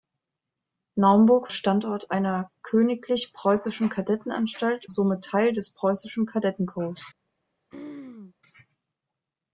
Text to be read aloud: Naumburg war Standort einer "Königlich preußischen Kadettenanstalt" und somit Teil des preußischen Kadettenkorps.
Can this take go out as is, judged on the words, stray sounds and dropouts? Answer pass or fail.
fail